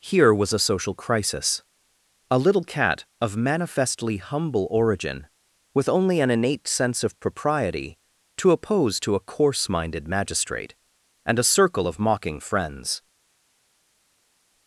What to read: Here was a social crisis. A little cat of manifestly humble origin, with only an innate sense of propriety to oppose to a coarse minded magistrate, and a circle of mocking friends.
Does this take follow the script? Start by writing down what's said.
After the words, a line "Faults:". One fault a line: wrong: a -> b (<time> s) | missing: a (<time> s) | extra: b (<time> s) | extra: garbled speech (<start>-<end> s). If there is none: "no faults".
Here was a social crisis. A little cat of manifestly humble origin, with only an innate sense of propriety to oppose to a coarse minded magistrate, and a circle of mocking friends.
Faults:
no faults